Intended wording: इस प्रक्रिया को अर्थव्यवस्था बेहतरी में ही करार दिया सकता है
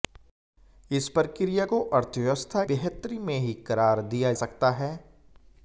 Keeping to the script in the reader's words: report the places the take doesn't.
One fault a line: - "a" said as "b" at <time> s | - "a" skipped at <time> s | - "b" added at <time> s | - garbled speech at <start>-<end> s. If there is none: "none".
none